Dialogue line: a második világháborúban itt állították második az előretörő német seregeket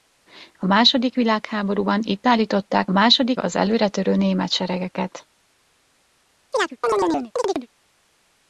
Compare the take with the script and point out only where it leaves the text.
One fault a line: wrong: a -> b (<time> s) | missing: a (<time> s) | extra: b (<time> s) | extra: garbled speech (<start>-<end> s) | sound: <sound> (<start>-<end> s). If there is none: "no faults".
sound: chirp (6.5-7.7 s)